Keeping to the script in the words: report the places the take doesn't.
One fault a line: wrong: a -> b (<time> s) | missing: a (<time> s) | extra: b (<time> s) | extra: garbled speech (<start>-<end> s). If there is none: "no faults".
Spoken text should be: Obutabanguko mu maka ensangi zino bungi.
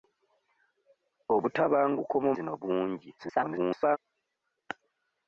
missing: maka ensangi (2.3 s)
extra: garbled speech (3.2-4.0 s)